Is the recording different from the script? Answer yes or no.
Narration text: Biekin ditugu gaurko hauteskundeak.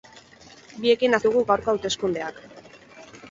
no